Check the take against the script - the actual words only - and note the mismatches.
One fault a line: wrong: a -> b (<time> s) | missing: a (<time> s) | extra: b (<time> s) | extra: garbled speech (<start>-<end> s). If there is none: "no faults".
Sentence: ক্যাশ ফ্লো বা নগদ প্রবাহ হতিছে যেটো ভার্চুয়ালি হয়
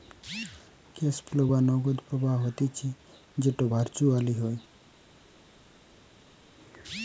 no faults